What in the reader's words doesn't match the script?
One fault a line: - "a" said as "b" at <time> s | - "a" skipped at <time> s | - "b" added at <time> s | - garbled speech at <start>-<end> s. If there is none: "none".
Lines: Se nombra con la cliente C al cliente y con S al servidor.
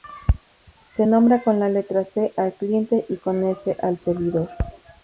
- "cliente" said as "letra" at 1.7 s